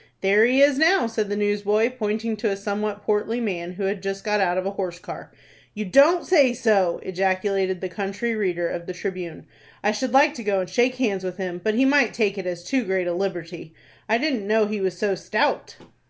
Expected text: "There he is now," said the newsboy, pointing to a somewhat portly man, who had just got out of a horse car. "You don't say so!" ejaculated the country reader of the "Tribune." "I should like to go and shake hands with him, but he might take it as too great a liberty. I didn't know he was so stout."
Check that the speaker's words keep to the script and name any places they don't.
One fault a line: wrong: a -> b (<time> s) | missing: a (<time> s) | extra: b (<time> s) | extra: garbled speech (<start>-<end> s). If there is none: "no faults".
no faults